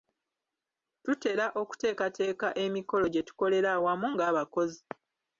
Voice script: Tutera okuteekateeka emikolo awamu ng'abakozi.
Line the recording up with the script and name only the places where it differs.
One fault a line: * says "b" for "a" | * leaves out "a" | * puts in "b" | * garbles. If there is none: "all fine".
* puts in "gye tukolera"